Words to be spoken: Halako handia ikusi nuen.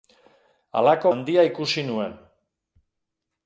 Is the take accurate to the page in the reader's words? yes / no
yes